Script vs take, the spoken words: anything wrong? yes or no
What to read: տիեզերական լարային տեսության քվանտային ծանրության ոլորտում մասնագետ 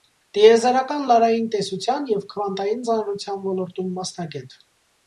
yes